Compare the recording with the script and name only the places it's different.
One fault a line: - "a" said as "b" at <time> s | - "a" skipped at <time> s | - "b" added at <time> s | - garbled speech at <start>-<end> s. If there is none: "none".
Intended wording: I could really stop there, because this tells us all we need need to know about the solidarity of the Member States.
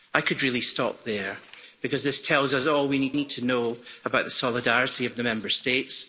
none